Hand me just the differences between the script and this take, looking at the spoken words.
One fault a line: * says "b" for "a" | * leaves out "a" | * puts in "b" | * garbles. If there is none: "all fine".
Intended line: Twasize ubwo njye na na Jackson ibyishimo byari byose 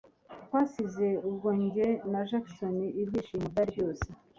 * leaves out "na"